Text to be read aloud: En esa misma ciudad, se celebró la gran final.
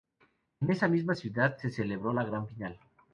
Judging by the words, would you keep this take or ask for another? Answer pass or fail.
pass